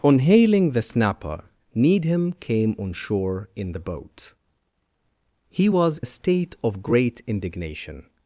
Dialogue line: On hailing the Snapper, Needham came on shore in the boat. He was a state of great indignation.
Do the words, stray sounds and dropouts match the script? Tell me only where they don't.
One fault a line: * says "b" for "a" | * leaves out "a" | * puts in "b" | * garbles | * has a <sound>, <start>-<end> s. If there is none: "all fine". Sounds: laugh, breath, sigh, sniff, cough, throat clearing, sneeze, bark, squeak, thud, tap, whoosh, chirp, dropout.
all fine